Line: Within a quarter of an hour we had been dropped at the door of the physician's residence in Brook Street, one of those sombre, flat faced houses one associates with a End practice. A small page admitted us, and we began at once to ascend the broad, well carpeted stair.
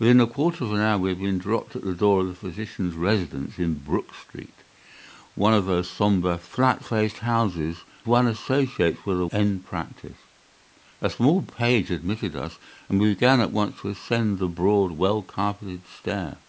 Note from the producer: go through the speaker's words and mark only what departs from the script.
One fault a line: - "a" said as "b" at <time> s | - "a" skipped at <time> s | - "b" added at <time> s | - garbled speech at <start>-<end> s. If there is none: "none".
none